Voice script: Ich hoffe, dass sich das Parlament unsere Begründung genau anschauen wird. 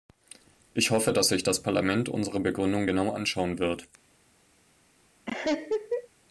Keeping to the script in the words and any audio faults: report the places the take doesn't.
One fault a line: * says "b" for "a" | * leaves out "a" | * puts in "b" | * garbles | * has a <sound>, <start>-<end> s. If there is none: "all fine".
* has a laugh, 5.3-6.1 s